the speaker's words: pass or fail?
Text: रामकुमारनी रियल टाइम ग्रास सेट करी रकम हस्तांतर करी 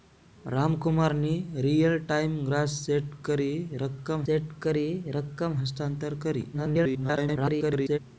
fail